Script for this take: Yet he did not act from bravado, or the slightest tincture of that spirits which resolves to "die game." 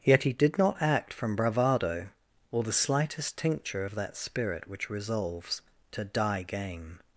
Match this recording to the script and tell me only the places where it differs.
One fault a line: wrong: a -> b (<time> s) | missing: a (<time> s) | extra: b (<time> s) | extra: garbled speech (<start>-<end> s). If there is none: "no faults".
wrong: spirits -> spirit (4.2 s)